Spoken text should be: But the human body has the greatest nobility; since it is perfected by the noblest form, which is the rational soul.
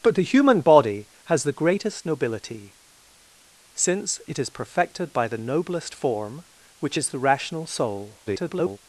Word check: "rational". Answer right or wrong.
right